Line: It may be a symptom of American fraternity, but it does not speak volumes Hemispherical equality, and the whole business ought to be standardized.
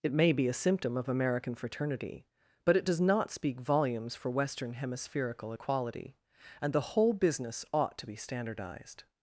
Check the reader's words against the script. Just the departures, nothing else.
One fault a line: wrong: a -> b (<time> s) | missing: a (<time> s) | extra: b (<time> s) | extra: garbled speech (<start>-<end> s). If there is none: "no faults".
extra: for Western (4.2 s)